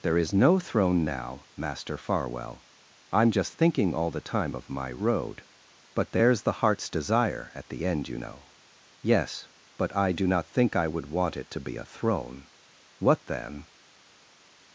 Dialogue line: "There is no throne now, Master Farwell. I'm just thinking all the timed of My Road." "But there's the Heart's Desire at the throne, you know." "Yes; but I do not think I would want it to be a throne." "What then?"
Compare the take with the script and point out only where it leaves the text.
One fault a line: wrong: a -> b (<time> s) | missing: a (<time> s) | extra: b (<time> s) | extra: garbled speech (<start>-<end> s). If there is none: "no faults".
wrong: timed -> time (4.2 s)
wrong: throne -> end (7.8 s)